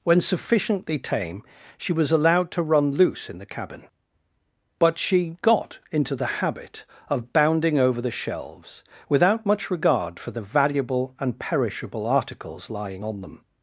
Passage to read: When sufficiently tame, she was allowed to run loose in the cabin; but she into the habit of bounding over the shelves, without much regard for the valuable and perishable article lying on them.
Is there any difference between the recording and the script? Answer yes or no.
yes